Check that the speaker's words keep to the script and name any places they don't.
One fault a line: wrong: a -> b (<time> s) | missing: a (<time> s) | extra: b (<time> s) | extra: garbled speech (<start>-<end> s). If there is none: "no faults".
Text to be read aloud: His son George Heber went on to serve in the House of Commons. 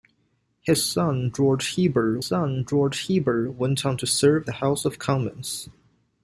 extra: son George Heber (2.2 s)
missing: in (4.5 s)